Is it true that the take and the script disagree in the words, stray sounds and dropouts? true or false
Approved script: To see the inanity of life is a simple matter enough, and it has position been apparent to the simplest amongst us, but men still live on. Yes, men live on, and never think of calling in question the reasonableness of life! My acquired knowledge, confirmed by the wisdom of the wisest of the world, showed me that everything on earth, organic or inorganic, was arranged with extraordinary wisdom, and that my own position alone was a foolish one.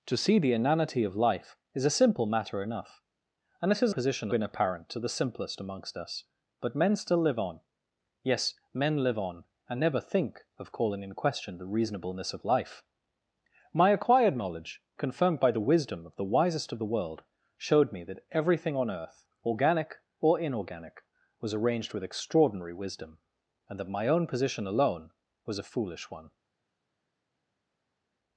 false